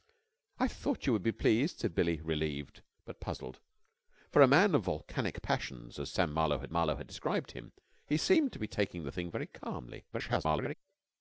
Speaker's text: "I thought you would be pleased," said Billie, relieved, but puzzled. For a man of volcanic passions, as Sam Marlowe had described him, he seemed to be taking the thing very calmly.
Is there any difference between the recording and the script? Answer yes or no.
yes